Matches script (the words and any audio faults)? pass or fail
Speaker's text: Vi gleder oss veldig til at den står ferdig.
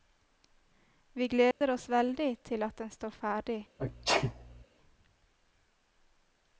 fail